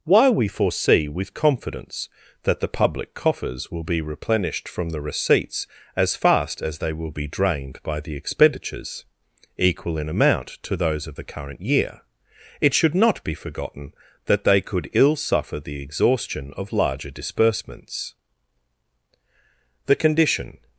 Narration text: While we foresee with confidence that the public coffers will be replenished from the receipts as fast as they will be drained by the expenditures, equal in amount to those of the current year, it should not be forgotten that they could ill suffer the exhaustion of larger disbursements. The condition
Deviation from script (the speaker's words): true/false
false